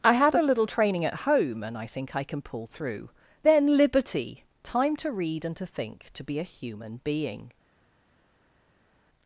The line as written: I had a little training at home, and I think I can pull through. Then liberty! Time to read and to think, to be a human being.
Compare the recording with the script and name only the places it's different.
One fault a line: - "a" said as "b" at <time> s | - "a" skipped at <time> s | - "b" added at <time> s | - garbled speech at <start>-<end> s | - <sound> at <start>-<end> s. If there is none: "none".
none